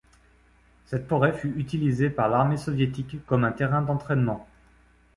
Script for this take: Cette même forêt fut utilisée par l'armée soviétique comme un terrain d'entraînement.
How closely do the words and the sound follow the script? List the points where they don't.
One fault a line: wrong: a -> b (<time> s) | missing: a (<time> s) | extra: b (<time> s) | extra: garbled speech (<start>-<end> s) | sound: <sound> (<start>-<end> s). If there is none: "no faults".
missing: même (1.1 s)